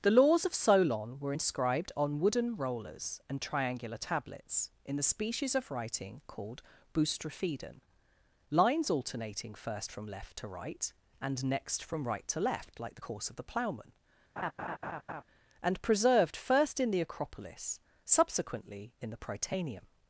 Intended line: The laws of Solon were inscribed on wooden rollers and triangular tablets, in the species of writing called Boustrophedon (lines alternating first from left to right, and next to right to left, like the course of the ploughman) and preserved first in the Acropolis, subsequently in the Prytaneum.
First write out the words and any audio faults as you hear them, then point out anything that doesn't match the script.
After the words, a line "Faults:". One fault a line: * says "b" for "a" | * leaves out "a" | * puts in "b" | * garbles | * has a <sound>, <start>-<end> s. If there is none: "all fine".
The laws of Solon were inscribed on wooden rollers and triangular tablets, in the species of writing called Boustrophedon (lines alternating first from left to right, and next from right to left, like the course of the ploughman) and preserved first in the Acropolis, subsequently in the Prytaneum.
Faults:
* says "from" for "to"
* has a laugh, 14.4-15.2 s